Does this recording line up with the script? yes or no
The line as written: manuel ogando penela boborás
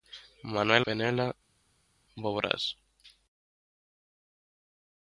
no